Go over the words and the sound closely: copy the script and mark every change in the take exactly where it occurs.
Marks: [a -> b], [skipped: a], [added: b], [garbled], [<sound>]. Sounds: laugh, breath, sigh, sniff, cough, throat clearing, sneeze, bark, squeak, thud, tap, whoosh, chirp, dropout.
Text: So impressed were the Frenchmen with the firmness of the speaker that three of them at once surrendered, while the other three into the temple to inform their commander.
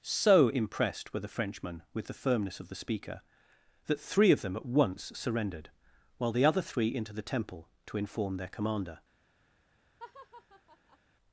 So impressed were the Frenchmen with the firmness of the speaker that three of them at once surrendered, while the other three into the temple to inform their commander. [laugh]